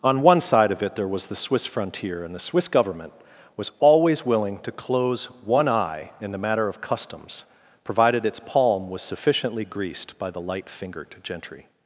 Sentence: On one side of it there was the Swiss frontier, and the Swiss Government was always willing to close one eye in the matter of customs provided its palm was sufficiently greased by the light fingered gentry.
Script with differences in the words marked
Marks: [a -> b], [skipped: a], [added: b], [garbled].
On one side of it there was the Swiss frontier, and the Swiss Government was always willing to close one eye in the matter of customs provided its palm was sufficiently greased by the light fingered gentry.